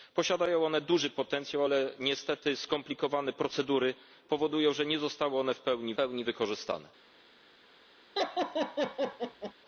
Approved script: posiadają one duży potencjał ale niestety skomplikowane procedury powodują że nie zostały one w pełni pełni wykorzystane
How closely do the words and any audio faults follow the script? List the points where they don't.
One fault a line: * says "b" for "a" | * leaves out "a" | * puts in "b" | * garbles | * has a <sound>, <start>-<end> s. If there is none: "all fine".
* has a laugh, 8.2-9.5 s